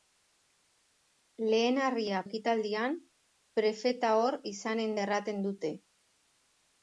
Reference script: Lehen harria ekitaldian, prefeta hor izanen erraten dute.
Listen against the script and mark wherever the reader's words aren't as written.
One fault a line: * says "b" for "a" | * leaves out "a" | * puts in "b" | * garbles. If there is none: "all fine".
all fine